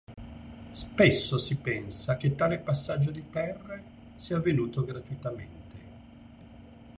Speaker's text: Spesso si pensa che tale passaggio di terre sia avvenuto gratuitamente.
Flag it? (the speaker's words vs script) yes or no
no